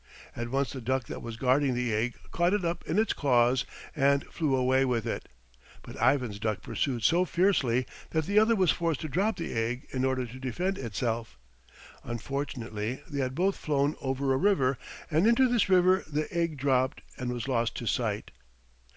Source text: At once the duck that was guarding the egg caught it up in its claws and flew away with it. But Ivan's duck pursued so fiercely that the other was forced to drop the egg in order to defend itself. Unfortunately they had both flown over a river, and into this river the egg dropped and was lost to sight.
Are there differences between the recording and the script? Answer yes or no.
no